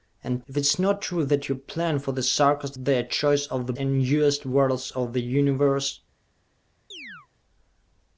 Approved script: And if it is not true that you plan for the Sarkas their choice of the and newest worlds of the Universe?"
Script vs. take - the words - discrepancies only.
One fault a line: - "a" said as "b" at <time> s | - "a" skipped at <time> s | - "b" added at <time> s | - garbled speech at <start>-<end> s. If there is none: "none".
none